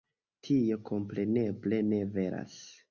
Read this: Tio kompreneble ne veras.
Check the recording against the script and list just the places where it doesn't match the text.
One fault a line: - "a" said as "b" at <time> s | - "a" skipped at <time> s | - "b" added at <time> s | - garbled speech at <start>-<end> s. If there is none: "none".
none